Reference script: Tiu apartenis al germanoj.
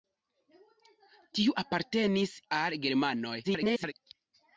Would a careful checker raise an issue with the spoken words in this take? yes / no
yes